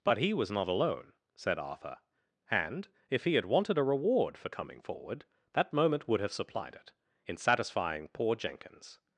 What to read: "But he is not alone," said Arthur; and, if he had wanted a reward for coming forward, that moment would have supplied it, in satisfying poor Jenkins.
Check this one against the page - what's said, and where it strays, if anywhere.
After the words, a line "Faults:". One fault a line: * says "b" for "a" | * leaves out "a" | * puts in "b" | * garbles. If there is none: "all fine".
"But he was not alone," said Arthur; and, if he had wanted a reward for coming forward, that moment would have supplied it, in satisfying poor Jenkins.
Faults:
* says "was" for "is"